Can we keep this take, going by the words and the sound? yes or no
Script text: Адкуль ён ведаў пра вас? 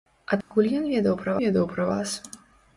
no